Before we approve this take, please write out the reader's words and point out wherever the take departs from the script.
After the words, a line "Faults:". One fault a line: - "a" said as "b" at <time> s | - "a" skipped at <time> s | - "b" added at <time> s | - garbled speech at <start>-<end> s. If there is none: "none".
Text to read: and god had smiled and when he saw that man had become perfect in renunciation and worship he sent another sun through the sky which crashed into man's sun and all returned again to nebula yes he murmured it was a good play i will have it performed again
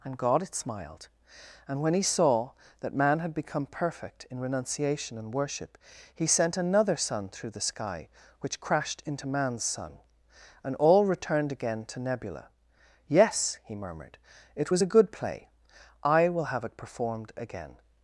and god had smiled and when he saw that man had become perfect in renunciation and worship he sent another sun through the sky which crashed into man's sun and all returned again to nebula yes he murmured it was a good play i will have it performed again
Faults:
none